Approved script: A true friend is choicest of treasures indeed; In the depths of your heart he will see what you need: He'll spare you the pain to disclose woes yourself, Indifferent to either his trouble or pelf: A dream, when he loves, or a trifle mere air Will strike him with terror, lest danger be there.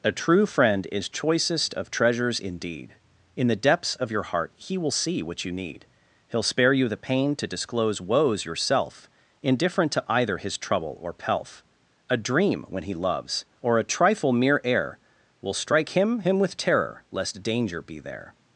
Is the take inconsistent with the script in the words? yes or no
yes